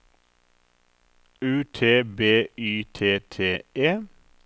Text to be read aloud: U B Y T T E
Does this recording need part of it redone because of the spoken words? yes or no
yes